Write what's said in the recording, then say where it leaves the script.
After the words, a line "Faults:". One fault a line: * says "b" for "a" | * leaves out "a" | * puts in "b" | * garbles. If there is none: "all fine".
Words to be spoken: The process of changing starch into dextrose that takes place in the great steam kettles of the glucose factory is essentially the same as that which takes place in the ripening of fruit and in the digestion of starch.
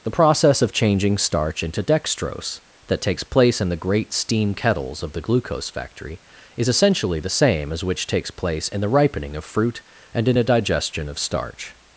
The process of changing starch into dextrose that takes place in the great steam kettles of the glucose factory is essentially the same as which takes place in the ripening of fruit and in a digestion of starch.
Faults:
* leaves out "that"
* says "a" for "the"